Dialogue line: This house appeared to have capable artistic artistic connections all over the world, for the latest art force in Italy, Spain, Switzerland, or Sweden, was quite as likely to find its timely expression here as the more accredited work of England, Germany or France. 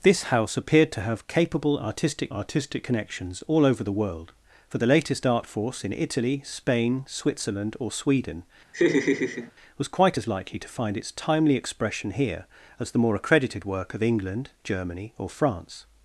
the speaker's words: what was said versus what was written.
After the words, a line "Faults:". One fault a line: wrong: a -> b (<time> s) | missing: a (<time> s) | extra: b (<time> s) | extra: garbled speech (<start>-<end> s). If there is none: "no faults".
This house appeared to have capable artistic artistic connections all over the world, for the latest art force in Italy, Spain, Switzerland, or Sweden, was quite as likely to find its timely expression here as the more accredited work of England, Germany or France.
Faults:
no faults